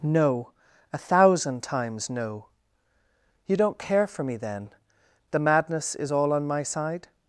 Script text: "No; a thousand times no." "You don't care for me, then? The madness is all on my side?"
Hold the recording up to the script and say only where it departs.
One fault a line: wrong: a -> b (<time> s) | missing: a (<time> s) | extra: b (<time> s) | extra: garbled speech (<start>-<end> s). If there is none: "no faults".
no faults